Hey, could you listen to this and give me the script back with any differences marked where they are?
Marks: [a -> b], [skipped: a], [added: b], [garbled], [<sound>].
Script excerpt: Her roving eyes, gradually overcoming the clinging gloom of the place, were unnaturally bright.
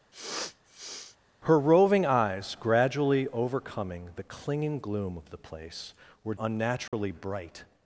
[sniff] Her roving eyes, gradually overcoming the clinging gloom of the place, were unnaturally [dropout] bright.